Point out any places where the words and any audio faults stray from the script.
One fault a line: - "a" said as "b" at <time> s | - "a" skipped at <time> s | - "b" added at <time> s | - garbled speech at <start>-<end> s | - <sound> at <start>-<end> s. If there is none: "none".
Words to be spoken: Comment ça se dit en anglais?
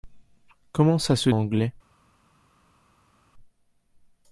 - "dit en" skipped at 1.3 s